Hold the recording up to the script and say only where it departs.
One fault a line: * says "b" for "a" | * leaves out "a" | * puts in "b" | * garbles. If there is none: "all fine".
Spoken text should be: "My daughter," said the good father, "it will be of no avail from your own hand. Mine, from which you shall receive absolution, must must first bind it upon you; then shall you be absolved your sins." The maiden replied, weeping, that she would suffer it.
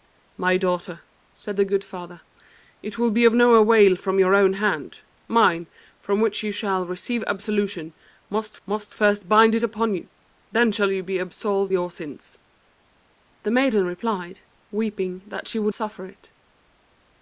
all fine